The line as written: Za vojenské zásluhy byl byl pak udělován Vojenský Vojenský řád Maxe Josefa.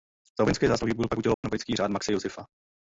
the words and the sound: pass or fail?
fail